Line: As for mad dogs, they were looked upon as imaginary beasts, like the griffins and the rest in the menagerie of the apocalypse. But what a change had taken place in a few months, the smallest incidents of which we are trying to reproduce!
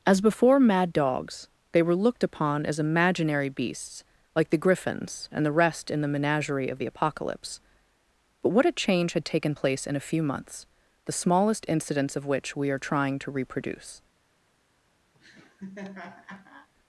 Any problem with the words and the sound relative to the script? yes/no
yes